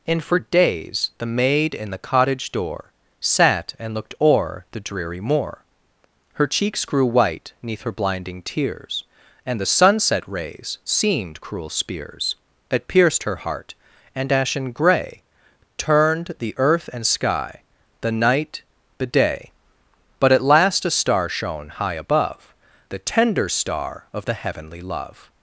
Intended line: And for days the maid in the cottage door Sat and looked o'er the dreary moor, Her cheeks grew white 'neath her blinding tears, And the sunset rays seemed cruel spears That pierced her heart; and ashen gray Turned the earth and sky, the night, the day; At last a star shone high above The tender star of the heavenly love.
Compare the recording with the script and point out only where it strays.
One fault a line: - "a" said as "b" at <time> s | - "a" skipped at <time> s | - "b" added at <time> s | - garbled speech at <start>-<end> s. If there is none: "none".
- "But" added at 20.2 s